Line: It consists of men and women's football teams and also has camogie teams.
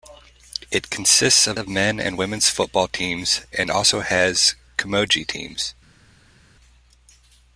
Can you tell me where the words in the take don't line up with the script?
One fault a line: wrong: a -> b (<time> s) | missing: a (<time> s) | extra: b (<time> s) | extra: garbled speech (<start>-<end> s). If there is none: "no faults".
extra: of (1.5 s)